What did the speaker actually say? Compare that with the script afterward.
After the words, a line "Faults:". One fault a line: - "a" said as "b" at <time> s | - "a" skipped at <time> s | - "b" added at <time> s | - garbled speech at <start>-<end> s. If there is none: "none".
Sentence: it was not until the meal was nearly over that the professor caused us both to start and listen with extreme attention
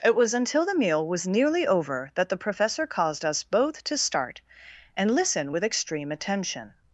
it was until the meal was nearly over that the professor caused us both to start and listen with extreme attention
Faults:
- "not" skipped at 0.3 s